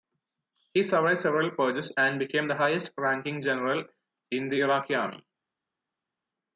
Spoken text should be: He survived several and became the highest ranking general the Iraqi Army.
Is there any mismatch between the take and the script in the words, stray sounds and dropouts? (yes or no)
yes